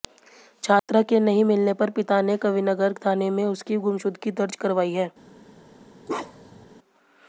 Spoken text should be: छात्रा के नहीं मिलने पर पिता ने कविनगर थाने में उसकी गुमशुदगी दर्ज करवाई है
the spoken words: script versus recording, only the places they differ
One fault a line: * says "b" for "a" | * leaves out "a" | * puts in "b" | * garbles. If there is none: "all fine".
all fine